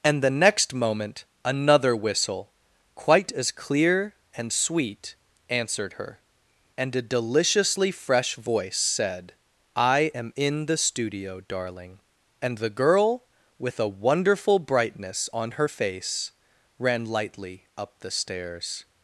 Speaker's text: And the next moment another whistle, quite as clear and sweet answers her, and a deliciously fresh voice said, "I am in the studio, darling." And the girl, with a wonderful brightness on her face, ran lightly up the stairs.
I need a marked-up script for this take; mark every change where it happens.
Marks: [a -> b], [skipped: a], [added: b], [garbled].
And the next moment another whistle, quite as clear and sweet [answers -> answered] her, and a deliciously fresh voice said, "I am in the studio, darling." And the girl, with a wonderful brightness on her face, ran lightly up the stairs.